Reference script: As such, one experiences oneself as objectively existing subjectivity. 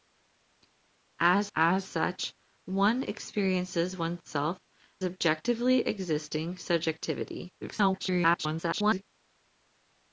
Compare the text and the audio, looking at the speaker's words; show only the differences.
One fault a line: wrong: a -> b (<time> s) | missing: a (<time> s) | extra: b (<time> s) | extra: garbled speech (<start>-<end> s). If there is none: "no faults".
extra: as (1.5 s)
missing: as (4.6 s)
extra: garbled speech (7.6-9.0 s)